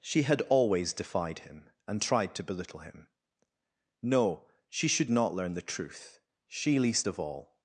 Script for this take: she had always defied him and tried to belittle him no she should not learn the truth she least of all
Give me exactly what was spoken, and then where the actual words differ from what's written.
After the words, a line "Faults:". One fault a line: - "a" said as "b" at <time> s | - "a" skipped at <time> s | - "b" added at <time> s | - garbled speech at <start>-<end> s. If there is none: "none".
she had always defied him and tried to belittle him no she should not learn the truth she least of all
Faults:
none